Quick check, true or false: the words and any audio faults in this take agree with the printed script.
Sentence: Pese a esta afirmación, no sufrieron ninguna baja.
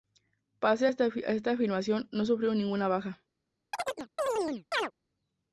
false